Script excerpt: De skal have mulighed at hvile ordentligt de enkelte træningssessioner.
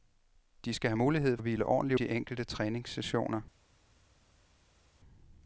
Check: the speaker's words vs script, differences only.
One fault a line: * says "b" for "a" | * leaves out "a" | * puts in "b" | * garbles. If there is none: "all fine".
all fine